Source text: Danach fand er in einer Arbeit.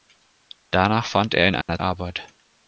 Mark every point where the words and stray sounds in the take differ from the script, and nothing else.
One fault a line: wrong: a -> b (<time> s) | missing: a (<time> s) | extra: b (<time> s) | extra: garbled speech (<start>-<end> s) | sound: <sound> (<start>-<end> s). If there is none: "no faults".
sound: dropout (1.6-1.7 s)